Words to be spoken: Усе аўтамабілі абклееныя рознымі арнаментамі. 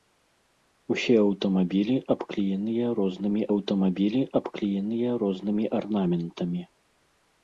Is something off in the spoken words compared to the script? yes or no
yes